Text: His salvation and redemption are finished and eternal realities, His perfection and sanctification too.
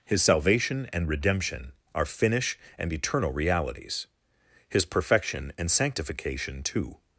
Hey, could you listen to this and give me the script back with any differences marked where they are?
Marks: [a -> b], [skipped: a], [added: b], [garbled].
His salvation and redemption are [finished -> finish] and eternal realities, His perfection and sanctification too.